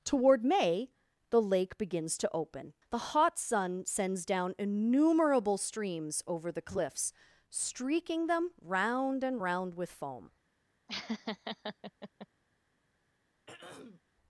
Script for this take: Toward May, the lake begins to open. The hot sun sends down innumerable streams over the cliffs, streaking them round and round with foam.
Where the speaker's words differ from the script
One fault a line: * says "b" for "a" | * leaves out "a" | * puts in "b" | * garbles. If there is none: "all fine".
all fine